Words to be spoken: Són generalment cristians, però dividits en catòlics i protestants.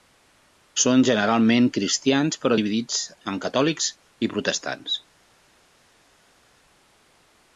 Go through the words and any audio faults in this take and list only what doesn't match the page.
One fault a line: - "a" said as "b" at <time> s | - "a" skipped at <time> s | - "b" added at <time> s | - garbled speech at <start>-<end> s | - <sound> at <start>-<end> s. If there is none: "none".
none